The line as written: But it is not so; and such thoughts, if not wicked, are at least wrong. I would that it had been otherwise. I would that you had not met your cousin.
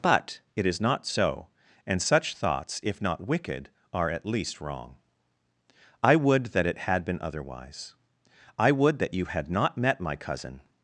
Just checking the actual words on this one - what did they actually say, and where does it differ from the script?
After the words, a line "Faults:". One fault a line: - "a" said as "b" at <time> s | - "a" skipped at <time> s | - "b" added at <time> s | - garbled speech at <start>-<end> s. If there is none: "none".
But it is not so; and such thoughts, if not wicked, are at least wrong. I would that it had been otherwise. I would that you had not met my cousin.
Faults:
- "your" said as "my" at 10.0 s